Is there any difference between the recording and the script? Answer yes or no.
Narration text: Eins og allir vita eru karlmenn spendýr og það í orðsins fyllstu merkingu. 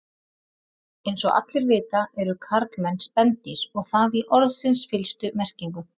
no